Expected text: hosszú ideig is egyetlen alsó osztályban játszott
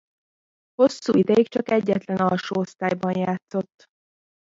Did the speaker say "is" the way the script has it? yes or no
no